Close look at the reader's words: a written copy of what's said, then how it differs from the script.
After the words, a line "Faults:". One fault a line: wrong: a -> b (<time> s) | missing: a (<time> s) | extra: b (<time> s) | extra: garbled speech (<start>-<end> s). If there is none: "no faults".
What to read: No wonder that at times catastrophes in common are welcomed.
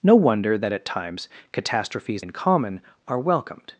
No wonder that at times catastrophes in common are welcomed.
Faults:
no faults